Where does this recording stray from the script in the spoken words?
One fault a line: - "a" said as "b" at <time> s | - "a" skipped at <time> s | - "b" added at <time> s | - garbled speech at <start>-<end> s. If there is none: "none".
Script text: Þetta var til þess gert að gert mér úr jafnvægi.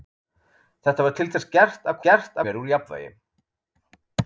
none